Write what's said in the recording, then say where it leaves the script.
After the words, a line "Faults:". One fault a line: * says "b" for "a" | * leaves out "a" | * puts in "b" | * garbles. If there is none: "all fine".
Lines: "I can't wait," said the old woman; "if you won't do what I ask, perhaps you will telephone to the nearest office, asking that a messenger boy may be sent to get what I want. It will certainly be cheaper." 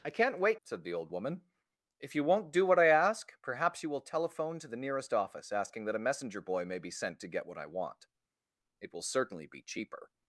"I can't wait," said the old woman; "if you won't do what I ask, perhaps you will telephone to the nearest office, asking that a messenger boy may be sent to get what I want. It will certainly be cheaper."
Faults:
all fine